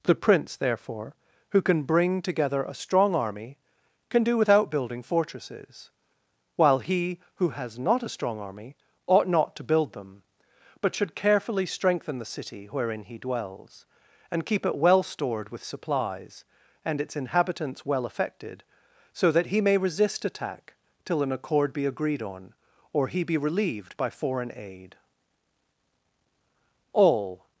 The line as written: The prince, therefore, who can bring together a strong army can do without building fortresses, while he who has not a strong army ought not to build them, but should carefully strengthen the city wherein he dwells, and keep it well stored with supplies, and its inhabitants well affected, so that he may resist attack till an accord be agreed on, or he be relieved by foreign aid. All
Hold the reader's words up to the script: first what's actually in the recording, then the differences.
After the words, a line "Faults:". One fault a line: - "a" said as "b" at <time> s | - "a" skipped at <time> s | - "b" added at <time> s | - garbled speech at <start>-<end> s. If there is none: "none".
The prince, therefore, who can bring together a strong army can do without building fortresses, while he who has not a strong army ought not to build them, but should carefully strengthen the city wherein he dwells, and keep it well stored with supplies, and its inhabitants well affected, so that he may resist attack till an accord be agreed on, or he be relieved by foreign aid. All
Faults:
none